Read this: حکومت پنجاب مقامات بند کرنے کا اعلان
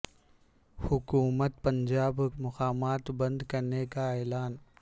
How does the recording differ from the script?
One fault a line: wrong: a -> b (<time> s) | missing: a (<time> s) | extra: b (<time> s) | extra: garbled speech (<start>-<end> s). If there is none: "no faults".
no faults